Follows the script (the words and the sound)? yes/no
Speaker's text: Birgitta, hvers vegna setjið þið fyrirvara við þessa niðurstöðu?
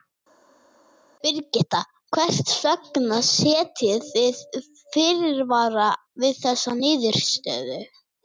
yes